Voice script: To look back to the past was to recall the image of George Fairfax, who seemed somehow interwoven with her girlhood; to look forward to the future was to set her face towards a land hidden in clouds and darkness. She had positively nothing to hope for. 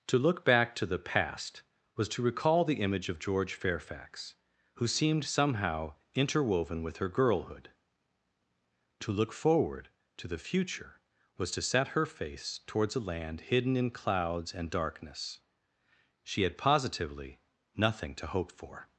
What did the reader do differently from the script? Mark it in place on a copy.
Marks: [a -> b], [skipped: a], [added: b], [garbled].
To look back to the past was to recall the image of George Fairfax, who seemed somehow interwoven with her girlhood; to look forward to the future was to set her face towards a land hidden in clouds and darkness. She had positively nothing to hope for.